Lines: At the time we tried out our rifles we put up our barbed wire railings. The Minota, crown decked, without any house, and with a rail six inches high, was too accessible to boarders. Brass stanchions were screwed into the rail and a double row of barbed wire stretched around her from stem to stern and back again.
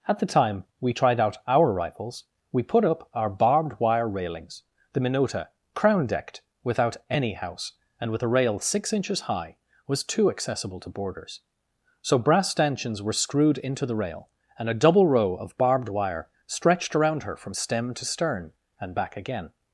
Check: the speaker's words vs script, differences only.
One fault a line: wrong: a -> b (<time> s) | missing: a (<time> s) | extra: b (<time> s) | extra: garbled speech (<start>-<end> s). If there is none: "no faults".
extra: So (12.0 s)